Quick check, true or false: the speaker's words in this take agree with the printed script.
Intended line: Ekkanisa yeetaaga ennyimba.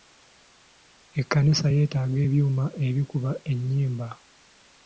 false